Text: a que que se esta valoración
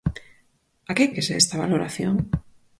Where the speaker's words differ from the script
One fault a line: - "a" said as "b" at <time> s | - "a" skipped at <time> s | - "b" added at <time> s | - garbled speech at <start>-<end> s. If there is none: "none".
none